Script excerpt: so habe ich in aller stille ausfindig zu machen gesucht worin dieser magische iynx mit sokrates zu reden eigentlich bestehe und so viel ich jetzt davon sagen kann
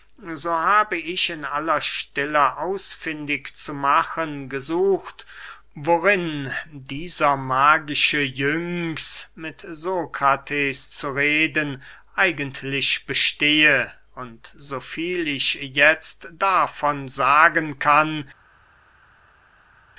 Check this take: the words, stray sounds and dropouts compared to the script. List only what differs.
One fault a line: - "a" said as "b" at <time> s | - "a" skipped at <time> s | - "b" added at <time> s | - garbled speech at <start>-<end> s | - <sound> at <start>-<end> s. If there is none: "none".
none